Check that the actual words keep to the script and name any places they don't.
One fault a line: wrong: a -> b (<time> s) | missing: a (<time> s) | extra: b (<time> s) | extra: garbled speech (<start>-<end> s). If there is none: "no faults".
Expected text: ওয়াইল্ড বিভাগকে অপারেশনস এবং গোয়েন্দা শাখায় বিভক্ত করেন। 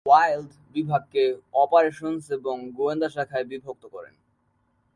no faults